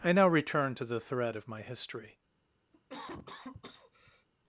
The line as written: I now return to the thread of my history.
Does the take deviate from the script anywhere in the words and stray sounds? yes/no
yes